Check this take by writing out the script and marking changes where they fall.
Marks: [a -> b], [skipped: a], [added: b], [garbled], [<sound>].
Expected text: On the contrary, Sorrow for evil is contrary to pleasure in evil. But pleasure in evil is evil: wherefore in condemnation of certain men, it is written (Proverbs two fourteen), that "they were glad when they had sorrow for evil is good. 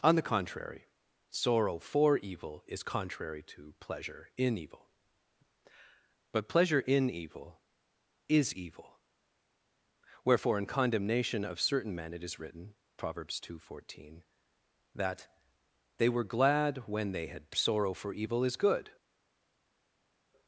On the contrary, Sorrow for evil is contrary to pleasure in evil. But pleasure in evil is evil: wherefore in condemnation of certain men, it is written (Proverbs two fourteen), that "they were glad when they had sorrow for evil is good.